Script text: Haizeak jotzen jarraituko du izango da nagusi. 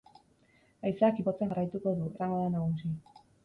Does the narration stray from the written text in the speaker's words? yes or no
no